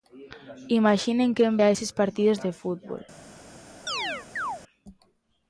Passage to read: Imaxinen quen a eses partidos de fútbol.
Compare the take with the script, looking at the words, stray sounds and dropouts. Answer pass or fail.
fail